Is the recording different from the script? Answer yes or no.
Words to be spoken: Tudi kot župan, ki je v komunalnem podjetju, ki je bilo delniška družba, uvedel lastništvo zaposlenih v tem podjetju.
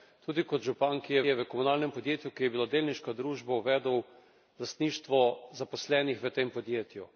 yes